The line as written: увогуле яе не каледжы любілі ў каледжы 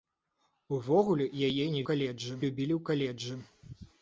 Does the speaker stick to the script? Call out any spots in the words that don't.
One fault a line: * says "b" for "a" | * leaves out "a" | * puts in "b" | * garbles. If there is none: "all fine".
all fine